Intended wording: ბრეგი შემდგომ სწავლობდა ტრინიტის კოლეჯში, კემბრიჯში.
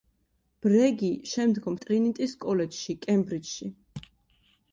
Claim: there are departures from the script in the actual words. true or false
true